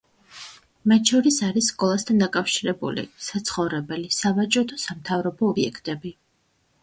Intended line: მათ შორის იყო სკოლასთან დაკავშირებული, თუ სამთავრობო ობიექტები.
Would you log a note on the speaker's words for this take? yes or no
yes